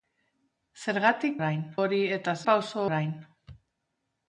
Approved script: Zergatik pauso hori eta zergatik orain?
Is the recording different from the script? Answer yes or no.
yes